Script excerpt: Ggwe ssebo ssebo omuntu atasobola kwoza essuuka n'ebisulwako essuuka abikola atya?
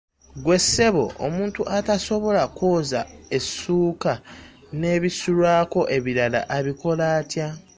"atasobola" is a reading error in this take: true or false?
false